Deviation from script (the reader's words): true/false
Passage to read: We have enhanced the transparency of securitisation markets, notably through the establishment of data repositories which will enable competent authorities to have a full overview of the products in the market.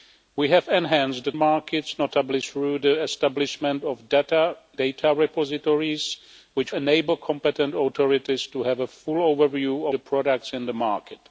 true